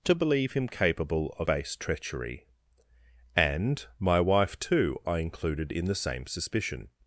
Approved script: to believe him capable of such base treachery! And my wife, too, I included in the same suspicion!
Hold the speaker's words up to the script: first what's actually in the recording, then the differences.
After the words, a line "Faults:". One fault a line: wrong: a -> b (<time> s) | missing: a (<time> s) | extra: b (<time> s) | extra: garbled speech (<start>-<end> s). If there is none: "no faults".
to believe him capable of base treachery! And my wife, too, I included in the same suspicion!
Faults:
missing: such (1.5 s)